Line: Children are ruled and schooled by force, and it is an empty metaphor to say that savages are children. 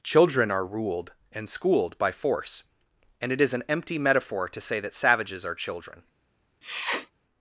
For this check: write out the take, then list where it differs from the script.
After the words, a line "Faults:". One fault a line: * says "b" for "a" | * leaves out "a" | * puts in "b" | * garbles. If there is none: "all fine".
Children are ruled and schooled by force, and it is an empty metaphor to say that savages are children.
Faults:
all fine